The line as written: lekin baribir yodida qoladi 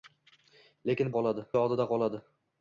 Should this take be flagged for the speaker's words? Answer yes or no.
yes